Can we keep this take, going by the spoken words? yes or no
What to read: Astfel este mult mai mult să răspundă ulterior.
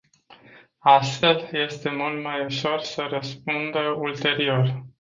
no